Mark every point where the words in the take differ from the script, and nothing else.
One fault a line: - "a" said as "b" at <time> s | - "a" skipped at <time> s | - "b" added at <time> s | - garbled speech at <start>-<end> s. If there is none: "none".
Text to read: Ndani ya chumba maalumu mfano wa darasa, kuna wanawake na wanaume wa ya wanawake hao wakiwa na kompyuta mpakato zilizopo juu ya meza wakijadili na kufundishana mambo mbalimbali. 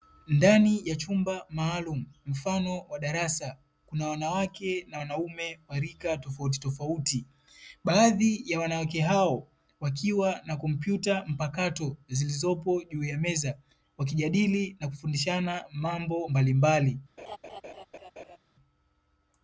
- "rika tofautitofauti baadhi" added at 5.8 s